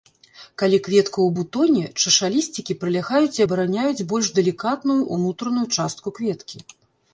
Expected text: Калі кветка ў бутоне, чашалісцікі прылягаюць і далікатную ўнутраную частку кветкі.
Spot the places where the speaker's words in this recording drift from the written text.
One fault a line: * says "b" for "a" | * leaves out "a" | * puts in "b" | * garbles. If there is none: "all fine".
* puts in "абараняюць больш"